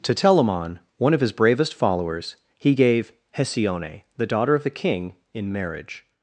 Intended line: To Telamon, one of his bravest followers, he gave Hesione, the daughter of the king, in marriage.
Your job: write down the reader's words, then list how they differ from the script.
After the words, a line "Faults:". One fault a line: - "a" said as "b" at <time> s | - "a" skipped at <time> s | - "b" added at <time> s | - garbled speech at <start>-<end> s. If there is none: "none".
To Telamon, one of his bravest followers, he gave Hesione, the daughter of the king, in marriage.
Faults:
none